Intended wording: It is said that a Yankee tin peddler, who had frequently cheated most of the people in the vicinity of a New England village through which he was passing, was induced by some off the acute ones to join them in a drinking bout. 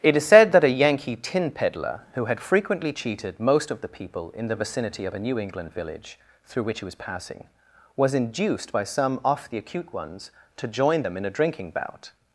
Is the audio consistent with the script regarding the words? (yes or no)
yes